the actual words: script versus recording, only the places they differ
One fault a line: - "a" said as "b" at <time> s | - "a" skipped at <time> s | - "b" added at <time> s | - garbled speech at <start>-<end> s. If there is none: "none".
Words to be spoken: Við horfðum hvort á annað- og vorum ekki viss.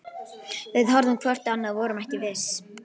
none